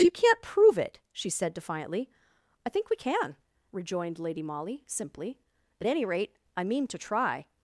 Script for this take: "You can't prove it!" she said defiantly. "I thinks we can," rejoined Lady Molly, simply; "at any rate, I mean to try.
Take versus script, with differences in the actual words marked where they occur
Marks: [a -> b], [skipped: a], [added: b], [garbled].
"You can't prove it!" she said defiantly. "I [thinks -> think] we can," rejoined Lady Molly, simply; "at any rate, I mean to try.